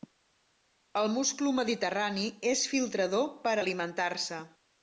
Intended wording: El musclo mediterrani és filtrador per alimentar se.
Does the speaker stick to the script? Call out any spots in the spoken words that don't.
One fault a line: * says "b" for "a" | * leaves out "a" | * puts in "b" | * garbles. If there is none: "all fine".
all fine